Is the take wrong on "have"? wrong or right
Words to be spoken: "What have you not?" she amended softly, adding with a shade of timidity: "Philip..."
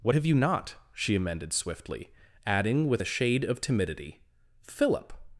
right